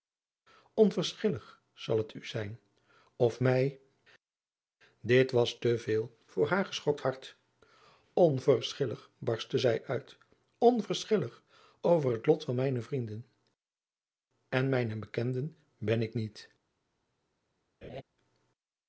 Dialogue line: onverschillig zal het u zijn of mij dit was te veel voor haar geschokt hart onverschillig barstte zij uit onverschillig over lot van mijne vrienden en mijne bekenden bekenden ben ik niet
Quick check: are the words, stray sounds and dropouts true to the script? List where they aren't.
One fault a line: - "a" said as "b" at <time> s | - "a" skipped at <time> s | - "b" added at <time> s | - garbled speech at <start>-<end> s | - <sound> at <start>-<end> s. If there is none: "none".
- "het" added at 12.1 s
- "bekenden" skipped at 15.6 s
- laugh at 17.8-18.0 s